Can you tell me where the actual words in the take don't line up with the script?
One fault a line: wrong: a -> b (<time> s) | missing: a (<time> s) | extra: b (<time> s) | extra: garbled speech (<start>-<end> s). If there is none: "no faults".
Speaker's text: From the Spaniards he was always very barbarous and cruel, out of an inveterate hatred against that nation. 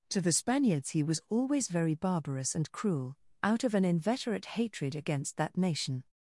wrong: From -> To (0.1 s)